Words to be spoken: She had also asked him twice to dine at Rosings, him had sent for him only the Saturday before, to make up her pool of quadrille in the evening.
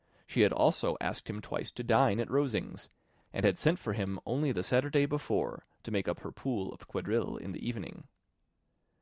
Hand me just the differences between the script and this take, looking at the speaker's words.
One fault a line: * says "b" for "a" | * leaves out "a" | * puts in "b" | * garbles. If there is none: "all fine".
* says "and" for "him"